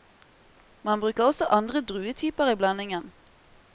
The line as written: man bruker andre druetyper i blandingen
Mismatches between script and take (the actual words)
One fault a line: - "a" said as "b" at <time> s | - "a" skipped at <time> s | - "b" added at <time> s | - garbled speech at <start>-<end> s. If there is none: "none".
- "også" added at 1.2 s